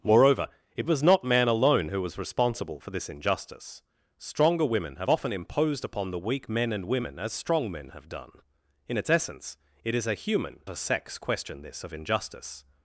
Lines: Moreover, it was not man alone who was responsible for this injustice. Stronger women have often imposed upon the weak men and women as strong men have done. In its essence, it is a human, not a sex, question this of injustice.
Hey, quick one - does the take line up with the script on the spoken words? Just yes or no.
no